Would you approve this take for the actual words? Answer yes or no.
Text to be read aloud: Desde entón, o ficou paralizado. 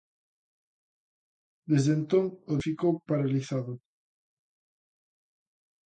yes